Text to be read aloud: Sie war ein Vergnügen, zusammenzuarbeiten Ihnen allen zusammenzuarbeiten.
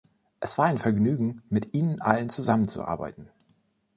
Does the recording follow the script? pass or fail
fail